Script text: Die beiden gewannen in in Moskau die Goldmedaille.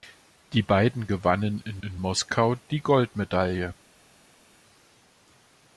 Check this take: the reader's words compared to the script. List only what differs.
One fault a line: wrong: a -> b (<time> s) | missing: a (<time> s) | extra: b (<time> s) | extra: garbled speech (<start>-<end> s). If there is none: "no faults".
no faults